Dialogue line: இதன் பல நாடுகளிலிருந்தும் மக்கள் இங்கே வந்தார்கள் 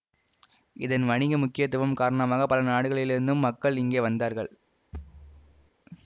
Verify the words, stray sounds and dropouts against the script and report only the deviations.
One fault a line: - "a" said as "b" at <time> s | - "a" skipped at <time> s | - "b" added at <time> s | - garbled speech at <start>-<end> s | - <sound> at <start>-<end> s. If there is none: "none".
- "வணிக முக்கியத்துவம் காரணமாக" added at 1.1 s
- thud at 4.9-5.7 s